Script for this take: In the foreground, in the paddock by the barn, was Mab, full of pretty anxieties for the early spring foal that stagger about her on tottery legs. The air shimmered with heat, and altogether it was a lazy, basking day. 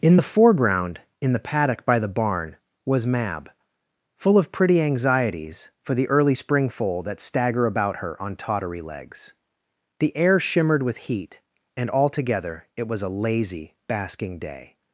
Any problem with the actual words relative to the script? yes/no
no